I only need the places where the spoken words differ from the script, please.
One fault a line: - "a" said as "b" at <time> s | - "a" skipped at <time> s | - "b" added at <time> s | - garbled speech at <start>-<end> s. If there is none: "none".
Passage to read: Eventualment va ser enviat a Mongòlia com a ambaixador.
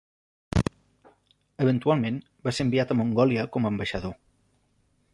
none